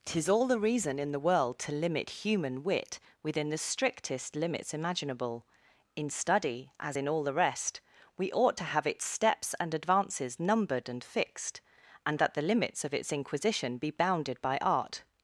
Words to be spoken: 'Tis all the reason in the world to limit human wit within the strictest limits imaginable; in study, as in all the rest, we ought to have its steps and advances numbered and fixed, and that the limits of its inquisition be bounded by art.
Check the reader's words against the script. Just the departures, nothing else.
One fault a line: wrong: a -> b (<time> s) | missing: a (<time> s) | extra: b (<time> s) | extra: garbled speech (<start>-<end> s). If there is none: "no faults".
no faults